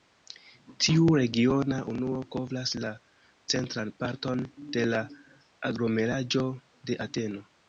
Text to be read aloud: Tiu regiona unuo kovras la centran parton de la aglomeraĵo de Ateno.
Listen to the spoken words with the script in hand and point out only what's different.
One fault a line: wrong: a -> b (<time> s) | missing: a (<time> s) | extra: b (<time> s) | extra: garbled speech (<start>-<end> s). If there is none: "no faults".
no faults